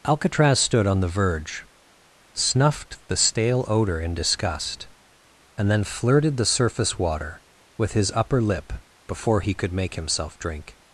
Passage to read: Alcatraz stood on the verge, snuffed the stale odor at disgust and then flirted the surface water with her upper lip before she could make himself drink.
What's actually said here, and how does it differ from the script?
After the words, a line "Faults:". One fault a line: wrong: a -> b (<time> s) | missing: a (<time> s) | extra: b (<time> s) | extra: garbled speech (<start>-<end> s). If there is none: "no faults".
Alcatraz stood on the verge, snuffed the stale odor in disgust and then flirted the surface water with his upper lip before he could make himself drink.
Faults:
wrong: at -> in (4.0 s)
wrong: her -> his (7.9 s)
wrong: she -> he (9.4 s)